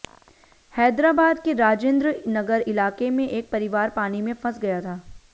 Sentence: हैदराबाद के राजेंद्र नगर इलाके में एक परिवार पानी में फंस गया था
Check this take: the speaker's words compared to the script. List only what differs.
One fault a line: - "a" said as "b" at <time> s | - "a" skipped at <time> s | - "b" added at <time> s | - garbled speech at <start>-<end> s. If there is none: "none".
none